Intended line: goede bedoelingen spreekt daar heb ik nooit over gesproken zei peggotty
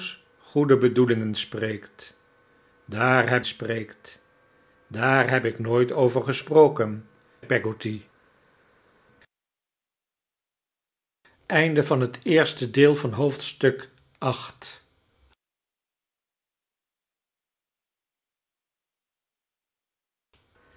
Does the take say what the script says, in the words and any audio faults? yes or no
no